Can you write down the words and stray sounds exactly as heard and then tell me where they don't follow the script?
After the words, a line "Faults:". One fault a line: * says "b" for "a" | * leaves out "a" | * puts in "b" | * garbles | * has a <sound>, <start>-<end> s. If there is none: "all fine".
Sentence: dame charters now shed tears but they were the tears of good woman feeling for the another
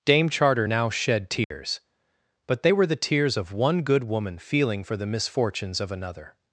dame charter now shed tears but they were the tears of one good woman feeling for the misfortunes of another
Faults:
* says "charter" for "charters"
* has a dropout, 1.4-1.5 s
* puts in "one"
* puts in "misfortunes of"